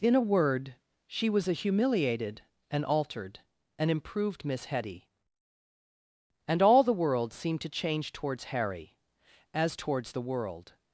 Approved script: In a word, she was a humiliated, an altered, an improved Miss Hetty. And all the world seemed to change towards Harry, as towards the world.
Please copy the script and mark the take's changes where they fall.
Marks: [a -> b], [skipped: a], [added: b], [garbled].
In a word, she was a humiliated, an altered, an improved Miss Hetty. And all the world seemed to change towards Harry, as towards the world.